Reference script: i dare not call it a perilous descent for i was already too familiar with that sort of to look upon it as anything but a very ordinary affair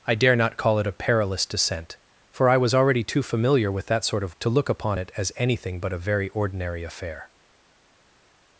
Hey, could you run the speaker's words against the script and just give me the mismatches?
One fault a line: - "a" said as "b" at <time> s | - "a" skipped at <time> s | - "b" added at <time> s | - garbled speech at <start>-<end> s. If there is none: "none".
none